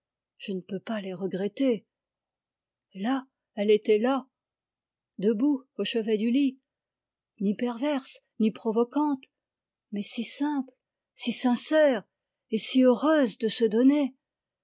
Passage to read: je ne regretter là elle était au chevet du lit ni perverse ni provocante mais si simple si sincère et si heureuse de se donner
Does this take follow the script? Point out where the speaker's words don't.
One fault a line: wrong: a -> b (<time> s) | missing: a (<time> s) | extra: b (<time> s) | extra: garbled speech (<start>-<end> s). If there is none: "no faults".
extra: peux pas les (0.6 s)
extra: là debout (4.0 s)